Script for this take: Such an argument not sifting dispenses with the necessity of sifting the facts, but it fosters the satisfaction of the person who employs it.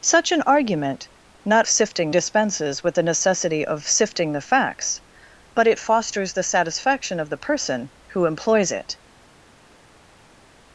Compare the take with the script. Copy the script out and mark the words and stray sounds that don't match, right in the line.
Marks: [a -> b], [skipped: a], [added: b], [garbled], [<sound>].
Such an argument not sifting dispenses with the necessity of sifting the facts, but it fosters the satisfaction of the person who employs it.